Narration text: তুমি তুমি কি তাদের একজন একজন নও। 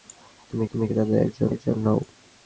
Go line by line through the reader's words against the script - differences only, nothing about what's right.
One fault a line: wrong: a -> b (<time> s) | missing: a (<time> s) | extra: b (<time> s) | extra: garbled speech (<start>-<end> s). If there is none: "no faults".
no faults